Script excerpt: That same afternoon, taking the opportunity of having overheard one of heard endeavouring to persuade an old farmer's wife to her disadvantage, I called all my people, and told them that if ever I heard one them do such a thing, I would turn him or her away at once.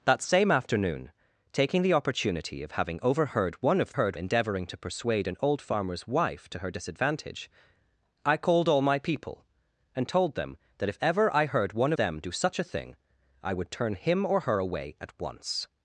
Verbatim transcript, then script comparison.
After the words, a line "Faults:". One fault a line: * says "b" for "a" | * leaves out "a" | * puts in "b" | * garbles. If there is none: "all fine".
That same afternoon, taking the opportunity of having overheard one of heard endeavouring to persuade an old farmer's wife to her disadvantage, I called all my people, and told them that if ever I heard one them do such a thing, I would turn him or her away at once.
Faults:
all fine